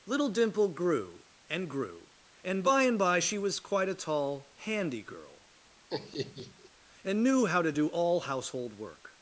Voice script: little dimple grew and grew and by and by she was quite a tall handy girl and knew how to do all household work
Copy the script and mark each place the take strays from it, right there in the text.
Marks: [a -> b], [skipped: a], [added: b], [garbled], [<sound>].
little dimple grew and grew and by and by she was quite a tall handy girl [laugh] and knew how to do all household work